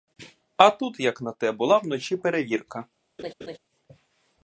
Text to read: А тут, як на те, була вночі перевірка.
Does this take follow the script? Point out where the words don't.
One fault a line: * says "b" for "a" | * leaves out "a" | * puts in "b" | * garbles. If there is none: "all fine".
all fine